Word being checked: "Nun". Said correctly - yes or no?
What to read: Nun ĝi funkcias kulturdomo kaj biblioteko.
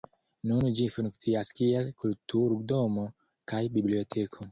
yes